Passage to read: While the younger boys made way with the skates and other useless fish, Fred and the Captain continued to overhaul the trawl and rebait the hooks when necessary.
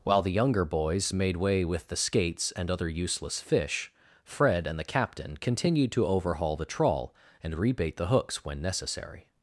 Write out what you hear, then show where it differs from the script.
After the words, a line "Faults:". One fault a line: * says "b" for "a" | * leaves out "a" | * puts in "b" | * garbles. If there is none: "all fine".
While the younger boys made way with the skates and other useless fish, Fred and the Captain continued to overhaul the trawl and rebait the hooks when necessary.
Faults:
all fine